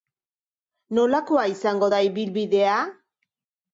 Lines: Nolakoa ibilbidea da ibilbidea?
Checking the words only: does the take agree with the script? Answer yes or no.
no